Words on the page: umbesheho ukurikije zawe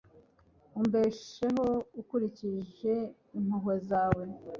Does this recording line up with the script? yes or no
no